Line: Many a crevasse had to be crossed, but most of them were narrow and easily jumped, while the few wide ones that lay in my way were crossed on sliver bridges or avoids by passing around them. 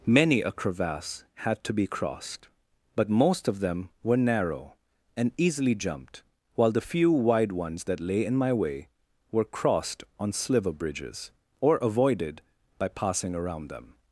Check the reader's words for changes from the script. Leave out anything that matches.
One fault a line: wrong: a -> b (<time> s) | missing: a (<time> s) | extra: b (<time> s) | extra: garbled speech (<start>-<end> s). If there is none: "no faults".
wrong: avoids -> avoided (11.8 s)